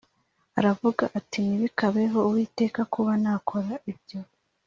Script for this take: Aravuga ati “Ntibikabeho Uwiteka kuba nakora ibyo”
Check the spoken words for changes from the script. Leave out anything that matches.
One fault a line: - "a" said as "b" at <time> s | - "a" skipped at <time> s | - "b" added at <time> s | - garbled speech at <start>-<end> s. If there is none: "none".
none